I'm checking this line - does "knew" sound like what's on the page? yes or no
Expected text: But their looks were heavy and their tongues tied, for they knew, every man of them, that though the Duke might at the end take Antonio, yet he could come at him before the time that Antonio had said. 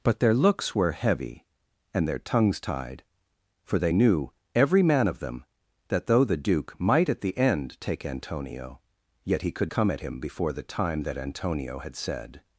yes